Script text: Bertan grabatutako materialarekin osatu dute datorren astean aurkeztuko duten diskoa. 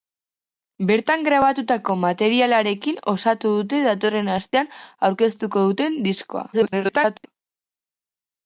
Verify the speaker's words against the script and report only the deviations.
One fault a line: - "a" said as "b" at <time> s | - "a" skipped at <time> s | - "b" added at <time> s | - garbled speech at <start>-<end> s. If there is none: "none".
- garbled speech at 6.5-7.3 s